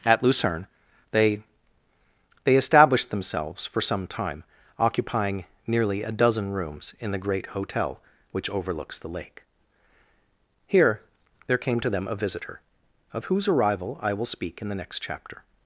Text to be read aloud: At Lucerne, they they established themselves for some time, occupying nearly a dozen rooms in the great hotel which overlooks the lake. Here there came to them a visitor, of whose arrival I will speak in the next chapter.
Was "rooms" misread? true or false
false